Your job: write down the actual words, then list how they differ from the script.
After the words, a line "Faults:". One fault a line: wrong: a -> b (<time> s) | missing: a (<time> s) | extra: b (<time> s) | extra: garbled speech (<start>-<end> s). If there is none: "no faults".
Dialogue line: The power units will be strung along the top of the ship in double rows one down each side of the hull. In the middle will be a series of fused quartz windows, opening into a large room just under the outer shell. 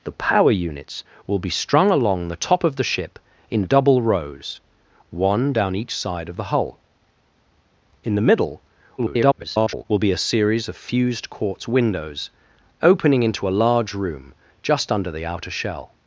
The power units will be strung along the top of the ship in double rows one down each side of the hull. In the middle [garbled] will be a series of fused quartz windows, opening into a large room just under the outer shell.
Faults:
extra: garbled speech (9.0-9.9 s)